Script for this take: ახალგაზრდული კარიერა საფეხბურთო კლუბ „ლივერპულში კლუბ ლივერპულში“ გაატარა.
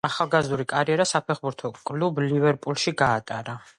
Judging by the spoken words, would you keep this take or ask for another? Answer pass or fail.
fail